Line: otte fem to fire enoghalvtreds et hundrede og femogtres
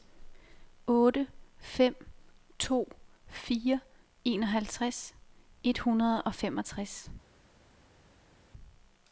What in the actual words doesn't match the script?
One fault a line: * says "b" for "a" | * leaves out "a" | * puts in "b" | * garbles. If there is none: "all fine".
all fine